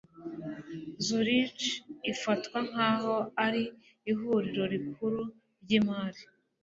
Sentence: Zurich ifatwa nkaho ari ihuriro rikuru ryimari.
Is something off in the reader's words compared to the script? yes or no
no